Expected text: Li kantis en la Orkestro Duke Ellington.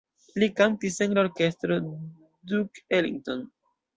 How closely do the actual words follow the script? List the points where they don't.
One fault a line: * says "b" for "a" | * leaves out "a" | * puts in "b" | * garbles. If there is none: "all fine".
all fine